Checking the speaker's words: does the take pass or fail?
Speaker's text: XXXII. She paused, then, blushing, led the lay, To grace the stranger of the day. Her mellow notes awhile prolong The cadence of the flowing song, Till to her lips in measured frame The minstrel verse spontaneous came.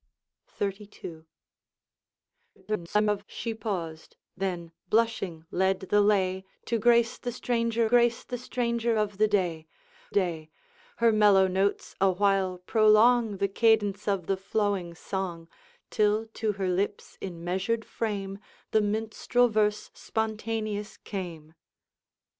fail